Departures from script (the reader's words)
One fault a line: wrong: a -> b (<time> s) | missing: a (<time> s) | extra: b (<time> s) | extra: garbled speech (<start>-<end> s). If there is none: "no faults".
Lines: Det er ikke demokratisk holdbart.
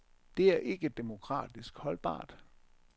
no faults